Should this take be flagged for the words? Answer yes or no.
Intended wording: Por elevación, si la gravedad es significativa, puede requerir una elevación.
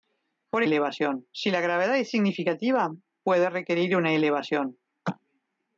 no